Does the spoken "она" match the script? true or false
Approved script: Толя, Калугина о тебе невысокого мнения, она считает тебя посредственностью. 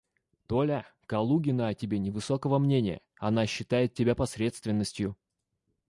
true